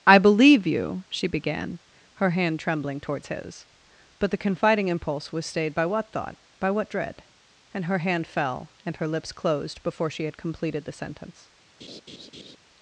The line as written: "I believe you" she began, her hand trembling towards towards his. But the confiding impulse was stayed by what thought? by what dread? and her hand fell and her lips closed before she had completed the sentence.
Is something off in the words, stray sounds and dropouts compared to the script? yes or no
yes